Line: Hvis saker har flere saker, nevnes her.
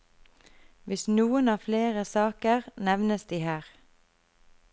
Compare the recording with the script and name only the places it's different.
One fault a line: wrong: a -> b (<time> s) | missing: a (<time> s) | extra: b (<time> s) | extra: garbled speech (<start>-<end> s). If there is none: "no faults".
wrong: saker -> noen (1.1 s)
extra: de (3.2 s)